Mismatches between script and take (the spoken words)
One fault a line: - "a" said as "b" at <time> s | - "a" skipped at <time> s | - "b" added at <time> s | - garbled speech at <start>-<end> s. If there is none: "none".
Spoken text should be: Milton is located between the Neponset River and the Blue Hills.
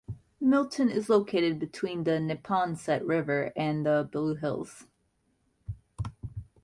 none